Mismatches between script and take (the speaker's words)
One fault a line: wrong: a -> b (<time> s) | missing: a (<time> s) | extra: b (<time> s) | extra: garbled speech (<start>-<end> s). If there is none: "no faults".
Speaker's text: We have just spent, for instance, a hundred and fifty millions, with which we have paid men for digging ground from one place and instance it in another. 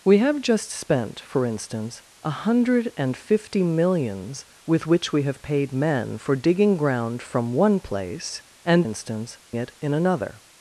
no faults